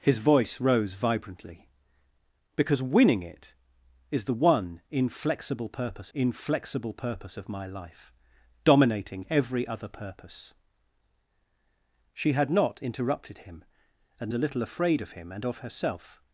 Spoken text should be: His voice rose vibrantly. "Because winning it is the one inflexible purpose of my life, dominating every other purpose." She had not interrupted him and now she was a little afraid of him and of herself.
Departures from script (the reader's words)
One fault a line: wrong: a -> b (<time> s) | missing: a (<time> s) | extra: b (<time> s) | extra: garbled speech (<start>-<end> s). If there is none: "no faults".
extra: inflexible purpose (6.1 s)
missing: now she was (14.3 s)